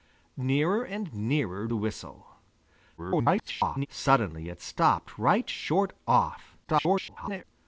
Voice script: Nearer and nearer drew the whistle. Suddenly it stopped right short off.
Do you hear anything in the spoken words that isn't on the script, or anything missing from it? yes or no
yes